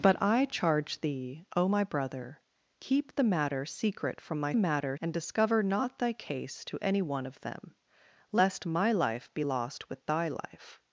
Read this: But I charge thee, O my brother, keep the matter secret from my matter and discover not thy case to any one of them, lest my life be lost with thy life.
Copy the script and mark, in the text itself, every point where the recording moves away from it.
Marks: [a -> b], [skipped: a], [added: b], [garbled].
But I charge thee, O my brother, keep the matter secret from my matter and discover not thy case to any one of them, lest my life be lost with thy life.